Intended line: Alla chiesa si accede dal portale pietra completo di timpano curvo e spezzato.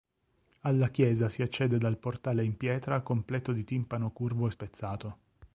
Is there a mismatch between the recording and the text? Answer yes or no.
yes